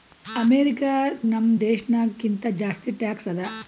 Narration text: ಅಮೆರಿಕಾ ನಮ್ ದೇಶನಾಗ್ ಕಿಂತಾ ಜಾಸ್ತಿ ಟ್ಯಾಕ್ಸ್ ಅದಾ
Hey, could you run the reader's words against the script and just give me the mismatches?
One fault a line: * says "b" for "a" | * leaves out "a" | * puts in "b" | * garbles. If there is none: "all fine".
all fine